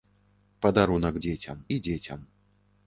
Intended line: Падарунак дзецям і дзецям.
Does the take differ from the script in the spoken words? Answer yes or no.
no